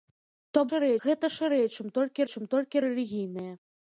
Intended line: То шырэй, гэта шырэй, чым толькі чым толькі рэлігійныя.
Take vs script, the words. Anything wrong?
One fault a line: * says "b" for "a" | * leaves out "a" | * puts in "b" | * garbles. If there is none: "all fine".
all fine